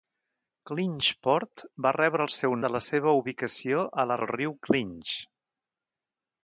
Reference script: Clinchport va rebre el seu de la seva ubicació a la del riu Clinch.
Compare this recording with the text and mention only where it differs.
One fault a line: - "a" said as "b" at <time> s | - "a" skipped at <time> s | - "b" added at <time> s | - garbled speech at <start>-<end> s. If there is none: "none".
none